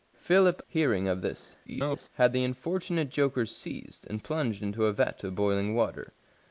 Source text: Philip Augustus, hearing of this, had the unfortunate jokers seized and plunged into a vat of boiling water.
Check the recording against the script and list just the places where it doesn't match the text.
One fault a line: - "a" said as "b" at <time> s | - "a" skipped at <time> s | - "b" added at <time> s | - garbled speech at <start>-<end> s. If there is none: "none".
- "Augustus" skipped at 0.6 s
- garbled speech at 1.6-2.1 s